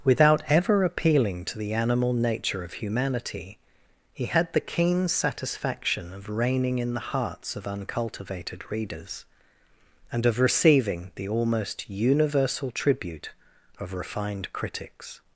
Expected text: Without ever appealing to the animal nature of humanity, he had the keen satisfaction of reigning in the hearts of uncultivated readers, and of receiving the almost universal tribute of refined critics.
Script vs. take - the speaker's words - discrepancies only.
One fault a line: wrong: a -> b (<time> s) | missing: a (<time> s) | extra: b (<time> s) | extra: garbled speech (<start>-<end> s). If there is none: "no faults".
no faults